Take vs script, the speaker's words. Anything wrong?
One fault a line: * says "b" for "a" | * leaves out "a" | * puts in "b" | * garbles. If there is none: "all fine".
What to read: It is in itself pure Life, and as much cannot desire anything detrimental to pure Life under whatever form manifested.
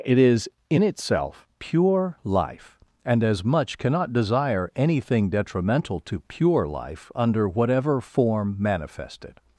all fine